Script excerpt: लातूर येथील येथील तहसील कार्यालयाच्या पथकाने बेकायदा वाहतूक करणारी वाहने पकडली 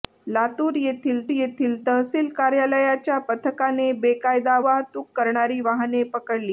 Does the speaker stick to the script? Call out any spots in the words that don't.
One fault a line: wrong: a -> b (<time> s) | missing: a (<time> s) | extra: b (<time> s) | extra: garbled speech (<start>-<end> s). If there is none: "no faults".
no faults